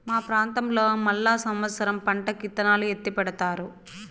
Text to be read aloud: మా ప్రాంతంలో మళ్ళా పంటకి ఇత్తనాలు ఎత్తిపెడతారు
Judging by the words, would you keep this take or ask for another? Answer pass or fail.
fail